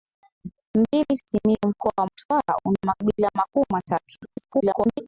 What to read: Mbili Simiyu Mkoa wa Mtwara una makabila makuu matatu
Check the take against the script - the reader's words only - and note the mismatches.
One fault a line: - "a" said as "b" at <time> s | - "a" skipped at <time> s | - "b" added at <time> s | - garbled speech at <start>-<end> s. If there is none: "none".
- garbled speech at 4.2-5.0 s